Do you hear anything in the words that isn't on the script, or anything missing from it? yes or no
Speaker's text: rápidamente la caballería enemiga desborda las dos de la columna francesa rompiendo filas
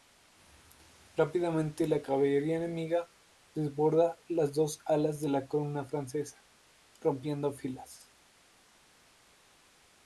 yes